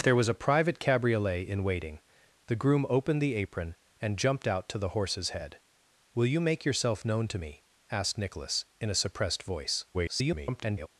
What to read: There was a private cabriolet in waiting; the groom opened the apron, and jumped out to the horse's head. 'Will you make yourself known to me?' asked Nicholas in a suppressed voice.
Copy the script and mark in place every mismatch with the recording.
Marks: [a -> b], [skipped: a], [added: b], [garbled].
There was a private cabriolet in waiting; the groom opened the apron, and jumped out to the horse's head. 'Will you make yourself known to me?' asked Nicholas in a suppressed voice. [garbled]